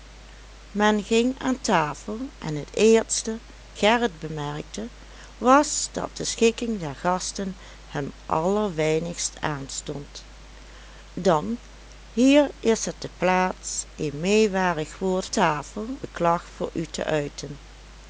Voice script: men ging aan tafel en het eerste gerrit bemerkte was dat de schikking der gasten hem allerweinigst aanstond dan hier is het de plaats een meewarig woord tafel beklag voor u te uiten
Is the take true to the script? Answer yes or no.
yes